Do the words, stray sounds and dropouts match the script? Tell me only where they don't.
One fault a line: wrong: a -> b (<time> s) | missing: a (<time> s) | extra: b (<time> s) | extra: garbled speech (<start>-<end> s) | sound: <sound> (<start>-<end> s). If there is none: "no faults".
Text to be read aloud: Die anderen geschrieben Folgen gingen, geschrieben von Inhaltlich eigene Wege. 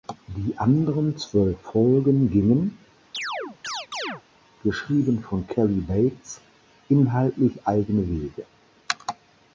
wrong: geschrieben -> zwölf (1.1 s)
sound: chirp (3.1-4.2 s)
extra: Cary Bates (5.5 s)